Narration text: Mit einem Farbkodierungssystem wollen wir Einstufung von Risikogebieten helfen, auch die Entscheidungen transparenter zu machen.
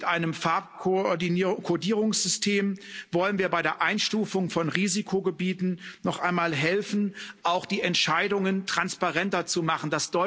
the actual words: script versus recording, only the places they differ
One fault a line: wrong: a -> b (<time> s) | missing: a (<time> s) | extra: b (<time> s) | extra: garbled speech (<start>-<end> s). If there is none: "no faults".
extra: bei der (3.5 s)
extra: noch einmal (6.0 s)